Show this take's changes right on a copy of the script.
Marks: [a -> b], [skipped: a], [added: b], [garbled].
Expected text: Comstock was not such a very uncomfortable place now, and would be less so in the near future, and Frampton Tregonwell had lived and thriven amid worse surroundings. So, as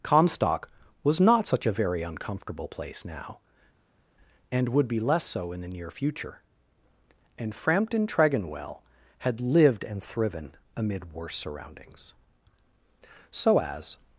Comstock was not such a very uncomfortable place now, and would be less so in the near future, and Frampton Tregonwell had lived and thriven amid worse surroundings. So, as